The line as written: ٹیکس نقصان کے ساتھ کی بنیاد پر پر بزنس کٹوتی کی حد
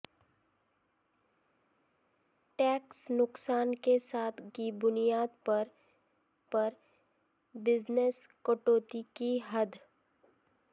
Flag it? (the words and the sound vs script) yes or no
no